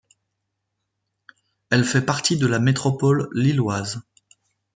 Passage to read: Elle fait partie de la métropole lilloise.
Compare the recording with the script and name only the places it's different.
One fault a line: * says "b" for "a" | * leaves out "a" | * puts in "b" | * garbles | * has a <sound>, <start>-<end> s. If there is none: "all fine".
all fine